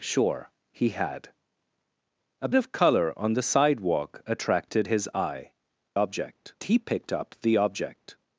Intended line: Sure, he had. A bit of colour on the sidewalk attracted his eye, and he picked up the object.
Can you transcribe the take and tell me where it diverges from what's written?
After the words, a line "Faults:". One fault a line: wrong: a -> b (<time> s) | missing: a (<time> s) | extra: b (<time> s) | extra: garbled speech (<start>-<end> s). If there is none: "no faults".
Sure, he had. A of colour on the sidewalk attracted his eye, object he picked up the object.
Faults:
missing: bit (2.5 s)
wrong: and -> object (5.9 s)